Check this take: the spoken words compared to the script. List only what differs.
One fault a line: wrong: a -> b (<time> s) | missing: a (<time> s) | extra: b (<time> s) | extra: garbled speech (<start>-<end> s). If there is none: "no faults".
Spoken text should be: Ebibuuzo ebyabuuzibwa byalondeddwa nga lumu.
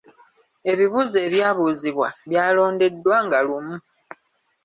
no faults